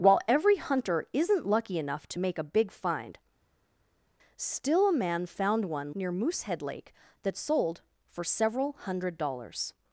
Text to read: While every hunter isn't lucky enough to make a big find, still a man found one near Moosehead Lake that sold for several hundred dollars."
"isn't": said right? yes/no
yes